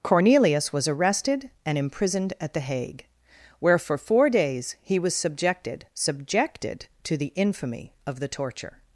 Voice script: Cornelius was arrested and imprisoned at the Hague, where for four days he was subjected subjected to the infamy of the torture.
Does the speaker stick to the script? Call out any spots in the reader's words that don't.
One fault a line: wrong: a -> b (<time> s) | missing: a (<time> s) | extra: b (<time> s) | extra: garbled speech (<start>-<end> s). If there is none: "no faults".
no faults